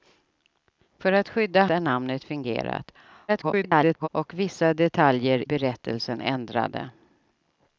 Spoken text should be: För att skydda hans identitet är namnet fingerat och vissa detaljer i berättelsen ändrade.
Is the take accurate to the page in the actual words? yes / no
no